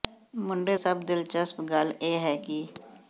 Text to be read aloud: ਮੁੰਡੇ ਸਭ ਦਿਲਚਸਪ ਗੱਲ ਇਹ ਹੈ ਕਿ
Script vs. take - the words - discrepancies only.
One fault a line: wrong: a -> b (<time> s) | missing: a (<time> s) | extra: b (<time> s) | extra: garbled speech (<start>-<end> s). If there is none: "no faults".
no faults